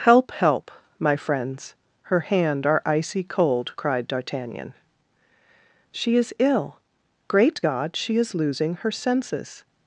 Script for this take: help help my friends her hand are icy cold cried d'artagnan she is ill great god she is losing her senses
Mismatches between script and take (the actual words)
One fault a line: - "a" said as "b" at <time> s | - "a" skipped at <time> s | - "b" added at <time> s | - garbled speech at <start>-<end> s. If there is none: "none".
none